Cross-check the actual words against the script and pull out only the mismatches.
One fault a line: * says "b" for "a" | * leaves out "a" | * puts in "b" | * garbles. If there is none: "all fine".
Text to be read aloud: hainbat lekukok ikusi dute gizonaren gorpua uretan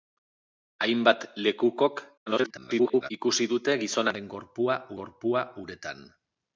* garbles
* puts in "gorpua"